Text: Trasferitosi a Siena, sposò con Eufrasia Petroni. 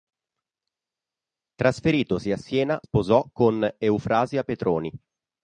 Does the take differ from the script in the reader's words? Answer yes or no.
no